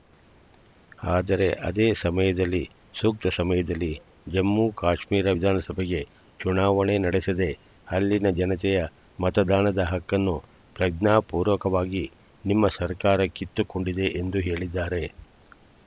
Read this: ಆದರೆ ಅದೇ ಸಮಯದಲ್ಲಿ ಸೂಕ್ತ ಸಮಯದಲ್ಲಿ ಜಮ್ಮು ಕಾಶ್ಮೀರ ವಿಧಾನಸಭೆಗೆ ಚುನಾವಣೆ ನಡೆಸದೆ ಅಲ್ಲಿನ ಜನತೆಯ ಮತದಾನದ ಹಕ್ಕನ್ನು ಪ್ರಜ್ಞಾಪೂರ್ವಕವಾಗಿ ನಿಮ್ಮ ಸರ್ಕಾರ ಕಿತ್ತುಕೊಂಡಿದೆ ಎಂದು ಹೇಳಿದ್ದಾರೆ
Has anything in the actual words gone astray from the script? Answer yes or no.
no